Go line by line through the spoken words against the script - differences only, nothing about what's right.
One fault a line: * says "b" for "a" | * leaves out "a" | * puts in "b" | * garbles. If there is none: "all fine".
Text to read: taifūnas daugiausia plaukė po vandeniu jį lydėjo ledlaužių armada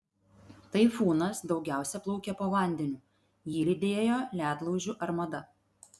all fine